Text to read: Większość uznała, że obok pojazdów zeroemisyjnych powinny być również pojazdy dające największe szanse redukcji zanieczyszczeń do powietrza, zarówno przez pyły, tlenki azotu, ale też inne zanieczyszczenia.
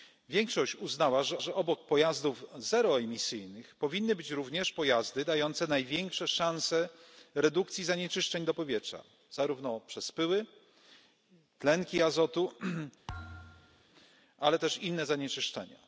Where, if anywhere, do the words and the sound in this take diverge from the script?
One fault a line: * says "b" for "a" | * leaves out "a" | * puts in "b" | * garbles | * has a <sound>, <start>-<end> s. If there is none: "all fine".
* puts in "że"
* has a thud, 13.1-13.8 s